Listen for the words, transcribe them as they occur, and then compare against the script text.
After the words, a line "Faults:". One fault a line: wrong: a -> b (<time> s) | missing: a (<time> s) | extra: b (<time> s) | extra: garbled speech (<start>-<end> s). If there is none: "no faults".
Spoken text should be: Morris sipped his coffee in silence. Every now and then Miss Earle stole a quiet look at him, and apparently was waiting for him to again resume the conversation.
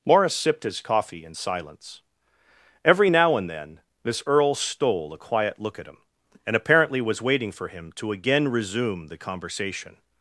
Morris sipped his coffee in silence. Every now and then Miss Earle stole a quiet look at him, and apparently was waiting for him to again resume the conversation.
Faults:
no faults